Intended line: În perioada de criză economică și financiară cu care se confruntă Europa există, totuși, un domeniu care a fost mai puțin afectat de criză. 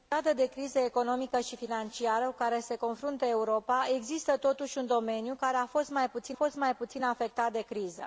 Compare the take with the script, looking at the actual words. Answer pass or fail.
fail